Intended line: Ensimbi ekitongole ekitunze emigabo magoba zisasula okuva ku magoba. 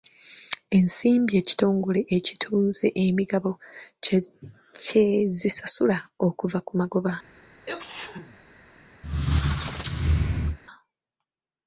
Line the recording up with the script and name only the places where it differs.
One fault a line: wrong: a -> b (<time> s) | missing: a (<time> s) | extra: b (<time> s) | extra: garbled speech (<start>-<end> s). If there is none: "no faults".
wrong: magoba -> kye (4.8 s)